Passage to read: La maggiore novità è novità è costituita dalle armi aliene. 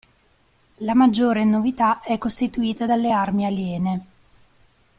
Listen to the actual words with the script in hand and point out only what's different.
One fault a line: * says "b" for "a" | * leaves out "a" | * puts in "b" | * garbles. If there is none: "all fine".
* leaves out "novità è"